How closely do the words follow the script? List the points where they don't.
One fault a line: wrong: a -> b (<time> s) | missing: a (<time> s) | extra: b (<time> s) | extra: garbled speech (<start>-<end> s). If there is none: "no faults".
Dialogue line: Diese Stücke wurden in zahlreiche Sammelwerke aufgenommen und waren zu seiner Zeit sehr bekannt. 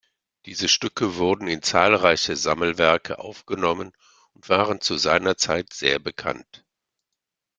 no faults